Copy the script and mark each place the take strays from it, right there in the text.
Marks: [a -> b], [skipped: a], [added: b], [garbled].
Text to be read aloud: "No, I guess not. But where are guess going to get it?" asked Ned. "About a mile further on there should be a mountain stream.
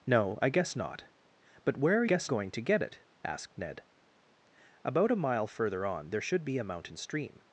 "No, I guess not. But where are guess going to get it?" asked Ned. "About a mile further on there should be a mountain stream.